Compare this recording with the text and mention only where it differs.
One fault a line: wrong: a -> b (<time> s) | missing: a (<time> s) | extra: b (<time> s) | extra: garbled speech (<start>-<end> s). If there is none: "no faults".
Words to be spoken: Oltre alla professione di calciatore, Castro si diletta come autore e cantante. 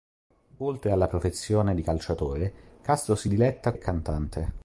missing: come autore (3.7 s)